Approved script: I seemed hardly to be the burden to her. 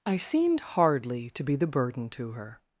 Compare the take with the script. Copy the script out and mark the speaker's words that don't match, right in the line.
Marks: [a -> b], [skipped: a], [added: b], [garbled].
I seemed hardly to be the burden to her.